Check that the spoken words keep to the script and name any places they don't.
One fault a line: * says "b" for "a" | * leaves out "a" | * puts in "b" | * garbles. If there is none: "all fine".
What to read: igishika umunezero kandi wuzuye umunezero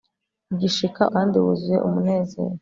* leaves out "umunezero"